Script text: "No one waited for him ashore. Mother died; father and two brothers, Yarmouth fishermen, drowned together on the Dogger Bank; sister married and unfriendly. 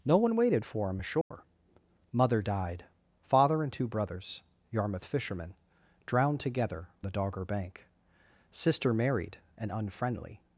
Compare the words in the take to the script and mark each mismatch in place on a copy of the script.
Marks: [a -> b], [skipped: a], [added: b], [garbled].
"No one waited for him ashore. Mother died; father and two brothers, Yarmouth fishermen, drowned together [skipped: on] the Dogger Bank; sister married and unfriendly.